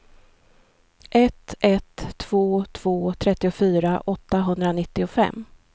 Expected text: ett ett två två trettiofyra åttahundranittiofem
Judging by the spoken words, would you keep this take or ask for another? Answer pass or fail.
pass